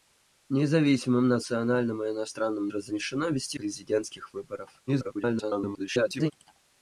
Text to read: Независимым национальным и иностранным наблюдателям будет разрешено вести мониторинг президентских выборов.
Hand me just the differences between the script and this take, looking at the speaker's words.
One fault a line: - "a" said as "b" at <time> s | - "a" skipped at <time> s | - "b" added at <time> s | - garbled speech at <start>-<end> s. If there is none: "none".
- "наблюдателям будет" skipped at 2.7 s
- "мониторинг" skipped at 3.6 s
- garbled speech at 4.9-6.3 s